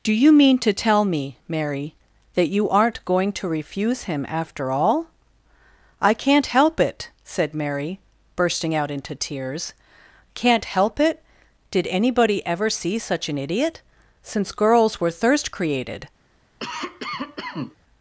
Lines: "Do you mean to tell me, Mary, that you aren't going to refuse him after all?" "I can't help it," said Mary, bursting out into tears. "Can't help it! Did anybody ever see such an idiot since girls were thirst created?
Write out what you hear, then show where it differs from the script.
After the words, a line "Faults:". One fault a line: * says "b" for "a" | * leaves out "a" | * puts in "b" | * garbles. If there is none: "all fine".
"Do you mean to tell me, Mary, that you aren't going to refuse him after all?" "I can't help it," said Mary, bursting out into tears. "Can't help it! Did anybody ever see such an idiot since girls were thirst created?
Faults:
all fine